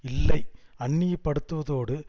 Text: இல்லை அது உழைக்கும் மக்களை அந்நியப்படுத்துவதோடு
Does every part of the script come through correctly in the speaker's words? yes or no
no